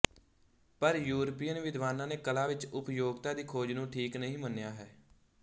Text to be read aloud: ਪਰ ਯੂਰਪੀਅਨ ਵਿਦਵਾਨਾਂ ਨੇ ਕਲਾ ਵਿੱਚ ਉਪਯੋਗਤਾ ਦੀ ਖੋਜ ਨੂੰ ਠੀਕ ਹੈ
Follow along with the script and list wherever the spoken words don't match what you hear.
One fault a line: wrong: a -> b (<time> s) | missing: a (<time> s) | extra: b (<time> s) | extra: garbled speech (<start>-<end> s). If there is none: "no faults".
extra: ਨਹੀਂ ਮੰਨਿਆ (4.2 s)